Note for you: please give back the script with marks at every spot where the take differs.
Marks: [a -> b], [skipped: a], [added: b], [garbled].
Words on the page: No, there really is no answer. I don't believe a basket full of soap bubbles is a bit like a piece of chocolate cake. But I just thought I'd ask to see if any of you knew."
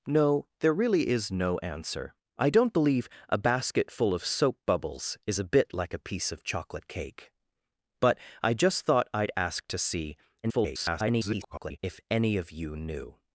No, there really is no answer. I don't believe a basket full of soap bubbles is a bit like a piece of chocolate cake. But I just thought I'd ask to see [garbled] if any of you knew."